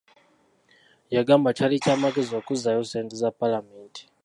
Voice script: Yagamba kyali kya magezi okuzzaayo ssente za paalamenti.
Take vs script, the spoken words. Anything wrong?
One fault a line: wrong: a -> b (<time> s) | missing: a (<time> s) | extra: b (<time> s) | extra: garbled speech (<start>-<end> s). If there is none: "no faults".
no faults